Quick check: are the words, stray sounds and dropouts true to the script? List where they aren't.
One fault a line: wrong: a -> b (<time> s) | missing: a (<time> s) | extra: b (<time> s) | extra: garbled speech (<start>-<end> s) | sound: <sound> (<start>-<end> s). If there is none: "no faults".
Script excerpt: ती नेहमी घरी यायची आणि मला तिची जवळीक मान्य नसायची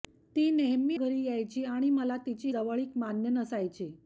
no faults